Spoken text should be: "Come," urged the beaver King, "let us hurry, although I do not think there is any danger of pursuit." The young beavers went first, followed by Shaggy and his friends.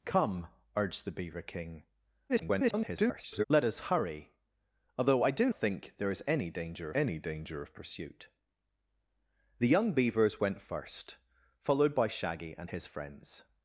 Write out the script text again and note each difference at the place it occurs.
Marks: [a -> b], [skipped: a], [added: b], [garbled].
"Come," urged the beaver King, [garbled] "let us hurry, although I do [skipped: not] think there is any danger [added: any danger] of pursuit." The young beavers went first, followed by Shaggy and his friends.